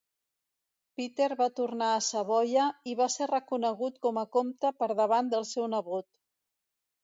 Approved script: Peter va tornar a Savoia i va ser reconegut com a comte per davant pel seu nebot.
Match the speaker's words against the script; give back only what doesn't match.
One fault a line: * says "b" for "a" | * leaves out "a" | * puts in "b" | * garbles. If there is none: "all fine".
* says "del" for "pel"